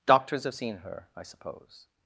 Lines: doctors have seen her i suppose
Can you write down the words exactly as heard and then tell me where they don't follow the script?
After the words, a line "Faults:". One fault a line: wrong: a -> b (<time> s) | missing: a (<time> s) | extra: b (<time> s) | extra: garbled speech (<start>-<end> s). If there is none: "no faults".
doctors have seen her i suppose
Faults:
no faults